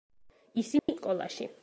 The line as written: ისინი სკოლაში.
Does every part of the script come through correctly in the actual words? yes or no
yes